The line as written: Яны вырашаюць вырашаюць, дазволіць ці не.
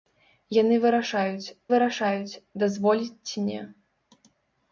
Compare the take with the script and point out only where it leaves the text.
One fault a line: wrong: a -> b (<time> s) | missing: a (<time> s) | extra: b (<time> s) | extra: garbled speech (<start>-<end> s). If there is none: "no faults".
no faults